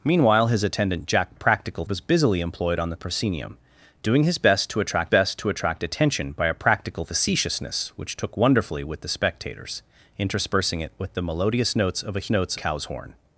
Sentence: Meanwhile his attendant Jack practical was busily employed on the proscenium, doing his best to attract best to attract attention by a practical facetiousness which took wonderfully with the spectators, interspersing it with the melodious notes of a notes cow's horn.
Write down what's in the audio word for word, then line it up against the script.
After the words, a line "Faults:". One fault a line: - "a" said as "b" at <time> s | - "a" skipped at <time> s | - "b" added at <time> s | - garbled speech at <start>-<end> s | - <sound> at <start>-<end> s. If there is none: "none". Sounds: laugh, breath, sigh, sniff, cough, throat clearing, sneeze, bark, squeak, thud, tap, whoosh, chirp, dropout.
Meanwhile his attendant Jack practical was busily employed on the proscenium, doing his best to attract best to attract attention by a practical facetiousness which took wonderfully with the spectators, interspersing it with the melodious notes of a notes cow's horn.
Faults:
none